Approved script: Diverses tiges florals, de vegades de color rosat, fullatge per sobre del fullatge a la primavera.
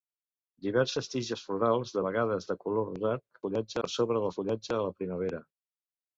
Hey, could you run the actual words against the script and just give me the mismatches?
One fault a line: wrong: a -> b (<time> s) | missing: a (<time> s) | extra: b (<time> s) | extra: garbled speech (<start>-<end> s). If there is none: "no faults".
no faults